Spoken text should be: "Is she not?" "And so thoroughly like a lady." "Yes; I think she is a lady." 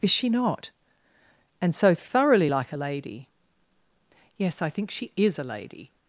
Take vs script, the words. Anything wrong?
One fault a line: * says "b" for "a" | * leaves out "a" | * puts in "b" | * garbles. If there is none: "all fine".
all fine